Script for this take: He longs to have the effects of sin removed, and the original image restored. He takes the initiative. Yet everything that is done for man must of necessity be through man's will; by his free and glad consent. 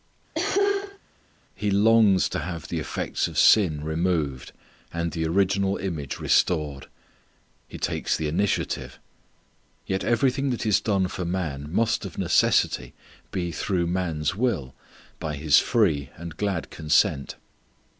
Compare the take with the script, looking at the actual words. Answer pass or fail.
pass